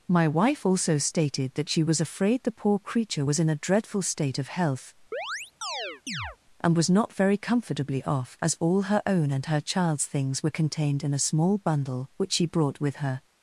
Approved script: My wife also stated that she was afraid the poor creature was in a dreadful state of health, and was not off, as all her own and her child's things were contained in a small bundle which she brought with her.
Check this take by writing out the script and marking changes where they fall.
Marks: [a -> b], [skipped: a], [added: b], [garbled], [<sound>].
My wife also stated that she was afraid the poor creature was in a dreadful state of health, [chirp] and was not [added: very comfortably] off, as all her own and her child's things were contained in a small bundle which she brought with her.